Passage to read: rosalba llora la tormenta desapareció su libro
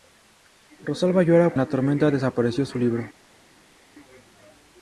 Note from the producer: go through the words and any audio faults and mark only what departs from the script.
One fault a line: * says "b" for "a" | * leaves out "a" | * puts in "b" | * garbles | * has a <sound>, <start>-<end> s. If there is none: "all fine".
all fine